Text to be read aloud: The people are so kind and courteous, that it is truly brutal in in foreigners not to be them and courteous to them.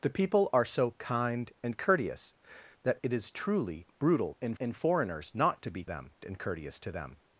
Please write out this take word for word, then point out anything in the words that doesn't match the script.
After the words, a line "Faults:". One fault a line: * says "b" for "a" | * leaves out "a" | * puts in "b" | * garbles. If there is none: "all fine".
The people are so kind and courteous, that it is truly brutal in in foreigners not to be them and courteous to them.
Faults:
all fine